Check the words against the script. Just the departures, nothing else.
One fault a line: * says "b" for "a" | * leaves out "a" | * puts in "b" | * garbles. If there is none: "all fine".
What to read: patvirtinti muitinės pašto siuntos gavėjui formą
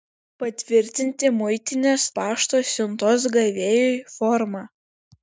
all fine